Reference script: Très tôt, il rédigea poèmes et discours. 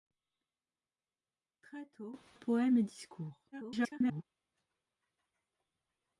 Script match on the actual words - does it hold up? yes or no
no